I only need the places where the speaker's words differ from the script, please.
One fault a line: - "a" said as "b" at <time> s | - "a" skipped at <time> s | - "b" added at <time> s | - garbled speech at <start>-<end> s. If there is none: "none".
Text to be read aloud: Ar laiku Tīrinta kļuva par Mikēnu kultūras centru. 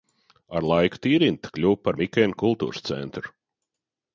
none